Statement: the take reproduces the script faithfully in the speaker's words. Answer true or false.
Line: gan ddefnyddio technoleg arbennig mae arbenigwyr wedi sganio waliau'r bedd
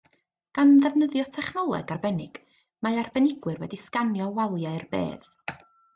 true